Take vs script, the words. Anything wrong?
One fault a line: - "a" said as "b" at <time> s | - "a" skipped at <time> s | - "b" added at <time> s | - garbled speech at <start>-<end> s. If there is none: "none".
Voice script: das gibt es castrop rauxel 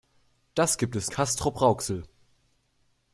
none